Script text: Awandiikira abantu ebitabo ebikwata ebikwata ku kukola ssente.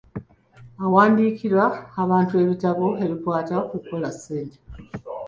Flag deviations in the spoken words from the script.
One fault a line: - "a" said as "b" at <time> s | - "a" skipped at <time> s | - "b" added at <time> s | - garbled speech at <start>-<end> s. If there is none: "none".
- "ebikwata" skipped at 3.5 s